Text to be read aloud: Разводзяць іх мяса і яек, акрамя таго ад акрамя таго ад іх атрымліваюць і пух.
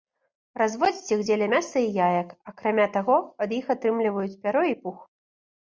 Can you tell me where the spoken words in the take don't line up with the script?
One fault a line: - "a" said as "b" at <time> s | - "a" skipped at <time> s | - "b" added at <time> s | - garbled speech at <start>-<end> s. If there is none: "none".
- "дзеля" added at 1.3 s
- "акрамя таго ад" skipped at 3.6 s
- "пяро" added at 4.5 s